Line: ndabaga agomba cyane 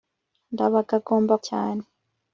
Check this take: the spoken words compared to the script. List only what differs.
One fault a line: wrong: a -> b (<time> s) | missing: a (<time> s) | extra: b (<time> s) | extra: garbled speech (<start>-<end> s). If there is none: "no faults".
no faults